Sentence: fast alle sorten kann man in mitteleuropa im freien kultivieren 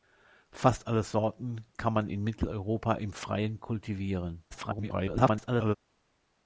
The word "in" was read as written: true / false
true